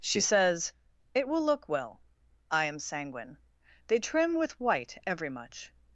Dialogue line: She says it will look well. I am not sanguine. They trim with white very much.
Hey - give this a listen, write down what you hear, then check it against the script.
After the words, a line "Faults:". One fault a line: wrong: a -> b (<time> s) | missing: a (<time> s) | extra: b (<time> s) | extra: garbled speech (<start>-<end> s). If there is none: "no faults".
She says it will look well. I am sanguine. They trim with white every much.
Faults:
missing: not (2.8 s)
wrong: very -> every (5.0 s)